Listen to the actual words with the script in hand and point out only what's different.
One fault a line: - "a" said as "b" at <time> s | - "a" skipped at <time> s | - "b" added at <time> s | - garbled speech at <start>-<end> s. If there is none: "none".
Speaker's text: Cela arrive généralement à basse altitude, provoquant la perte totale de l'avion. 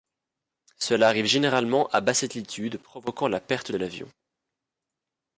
- "totale" skipped at 3.7 s